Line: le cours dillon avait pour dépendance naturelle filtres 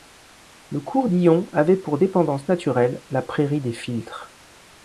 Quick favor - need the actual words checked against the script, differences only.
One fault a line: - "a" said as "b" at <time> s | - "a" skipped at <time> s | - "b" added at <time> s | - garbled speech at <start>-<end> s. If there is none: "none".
- "la prairie des" added at 3.1 s